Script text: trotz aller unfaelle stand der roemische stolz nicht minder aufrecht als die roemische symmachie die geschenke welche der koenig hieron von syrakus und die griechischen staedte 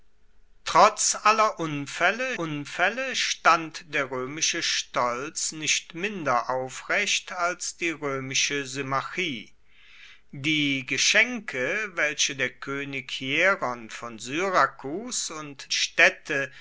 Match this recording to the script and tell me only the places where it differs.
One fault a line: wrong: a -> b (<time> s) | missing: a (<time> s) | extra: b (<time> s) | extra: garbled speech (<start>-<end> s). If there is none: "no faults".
extra: unfaelle (2.4 s)
missing: die griechischen (15.7 s)